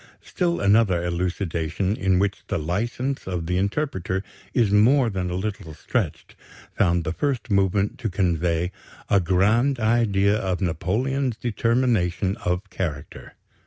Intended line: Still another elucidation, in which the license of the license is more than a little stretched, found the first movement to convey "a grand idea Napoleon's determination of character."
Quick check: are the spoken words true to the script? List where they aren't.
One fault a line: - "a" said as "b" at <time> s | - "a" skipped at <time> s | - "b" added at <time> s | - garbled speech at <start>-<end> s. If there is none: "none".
- "license" said as "interpreter" at 3.6 s
- "of" added at 10.3 s